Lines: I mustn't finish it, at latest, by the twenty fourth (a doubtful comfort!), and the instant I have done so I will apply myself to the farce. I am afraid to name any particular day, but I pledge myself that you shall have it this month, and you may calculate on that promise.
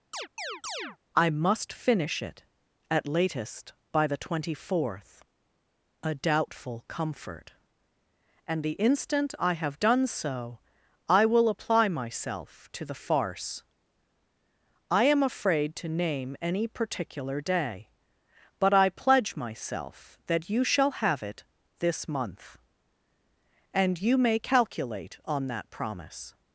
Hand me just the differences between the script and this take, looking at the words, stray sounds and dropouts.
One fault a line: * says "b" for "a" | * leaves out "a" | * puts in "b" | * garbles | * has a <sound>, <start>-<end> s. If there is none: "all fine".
* has a chirp, 0.1-1.0 s
* says "must" for "mustn't"